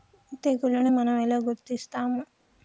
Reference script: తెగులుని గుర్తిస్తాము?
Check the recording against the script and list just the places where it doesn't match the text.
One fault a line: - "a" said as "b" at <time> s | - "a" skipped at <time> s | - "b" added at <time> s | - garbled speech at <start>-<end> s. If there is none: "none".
- "మనం ఎలా" added at 0.9 s